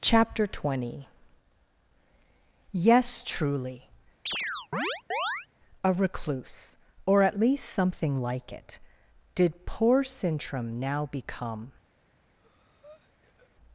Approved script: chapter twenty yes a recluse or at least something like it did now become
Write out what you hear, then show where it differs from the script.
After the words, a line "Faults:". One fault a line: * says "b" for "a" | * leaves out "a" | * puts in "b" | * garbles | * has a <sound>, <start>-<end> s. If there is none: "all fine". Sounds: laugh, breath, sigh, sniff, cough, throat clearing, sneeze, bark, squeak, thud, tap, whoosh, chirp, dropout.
chapter twenty yes truly a recluse or at least something like it did poor sintram now become
Faults:
* puts in "truly"
* has a chirp, 4.3-5.5 s
* puts in "poor sintram"
* has a breath, 12.4-13.5 s